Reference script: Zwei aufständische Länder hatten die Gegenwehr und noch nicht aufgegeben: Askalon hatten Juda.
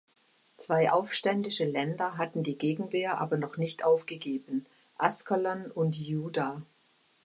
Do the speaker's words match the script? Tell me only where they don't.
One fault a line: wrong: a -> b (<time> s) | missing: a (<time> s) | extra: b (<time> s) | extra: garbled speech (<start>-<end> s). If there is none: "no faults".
wrong: und -> aber (3.2 s)
wrong: hatten -> und (5.7 s)